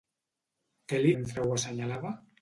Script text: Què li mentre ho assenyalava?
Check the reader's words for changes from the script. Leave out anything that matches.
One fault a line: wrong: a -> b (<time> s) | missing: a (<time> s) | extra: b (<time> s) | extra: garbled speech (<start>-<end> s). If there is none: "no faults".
no faults